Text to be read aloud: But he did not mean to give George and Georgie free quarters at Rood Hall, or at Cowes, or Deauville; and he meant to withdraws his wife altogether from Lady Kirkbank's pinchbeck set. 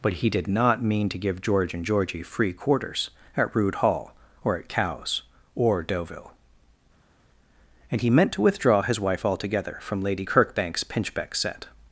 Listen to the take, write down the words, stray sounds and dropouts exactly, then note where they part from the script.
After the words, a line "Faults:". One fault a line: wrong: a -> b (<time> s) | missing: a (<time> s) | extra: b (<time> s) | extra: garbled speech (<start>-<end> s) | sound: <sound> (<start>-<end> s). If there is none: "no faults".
But he did not mean to give George and Georgie free quarters at Rood Hall, or at Cowes, or Deauville; and he meant to withdraw his wife altogether from Lady Kirkbank's pinchbeck set.
Faults:
wrong: withdraws -> withdraw (8.4 s)